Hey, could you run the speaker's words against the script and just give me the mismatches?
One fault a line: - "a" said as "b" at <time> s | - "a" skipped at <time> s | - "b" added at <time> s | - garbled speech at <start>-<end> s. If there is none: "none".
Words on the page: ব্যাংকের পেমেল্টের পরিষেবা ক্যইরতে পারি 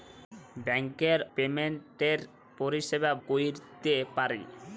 none